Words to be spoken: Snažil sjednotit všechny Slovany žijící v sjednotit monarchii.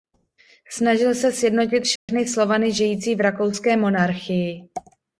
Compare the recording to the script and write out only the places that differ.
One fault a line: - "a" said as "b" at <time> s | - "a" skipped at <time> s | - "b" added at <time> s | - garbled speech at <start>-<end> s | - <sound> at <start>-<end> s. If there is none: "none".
- "se" added at 1.1 s
- dropout at 2.0-2.1 s
- "sjednotit" said as "rakouské" at 3.2 s